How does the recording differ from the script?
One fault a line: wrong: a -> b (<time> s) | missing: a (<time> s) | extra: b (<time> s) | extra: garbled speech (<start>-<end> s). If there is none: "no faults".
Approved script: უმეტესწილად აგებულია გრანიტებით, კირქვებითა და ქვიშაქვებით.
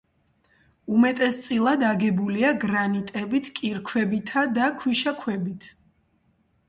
no faults